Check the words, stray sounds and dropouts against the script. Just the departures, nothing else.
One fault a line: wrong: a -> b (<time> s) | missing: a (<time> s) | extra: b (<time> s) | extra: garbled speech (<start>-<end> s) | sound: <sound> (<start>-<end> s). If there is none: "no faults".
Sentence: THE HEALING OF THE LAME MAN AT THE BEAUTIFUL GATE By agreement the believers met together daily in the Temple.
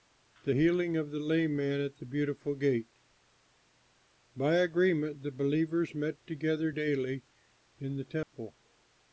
sound: dropout (8.2-8.3 s)